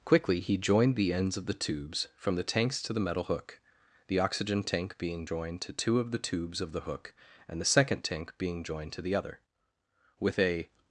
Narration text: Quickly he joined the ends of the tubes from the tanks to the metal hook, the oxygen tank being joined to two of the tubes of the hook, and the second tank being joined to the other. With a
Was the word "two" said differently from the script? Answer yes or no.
no